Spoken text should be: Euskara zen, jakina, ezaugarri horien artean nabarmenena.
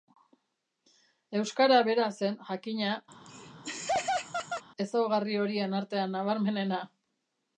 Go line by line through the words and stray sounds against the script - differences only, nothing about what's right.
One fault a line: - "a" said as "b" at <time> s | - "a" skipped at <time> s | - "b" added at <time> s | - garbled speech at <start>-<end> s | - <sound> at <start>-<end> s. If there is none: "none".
- "bera" added at 1.9 s
- laugh at 3.1-4.7 s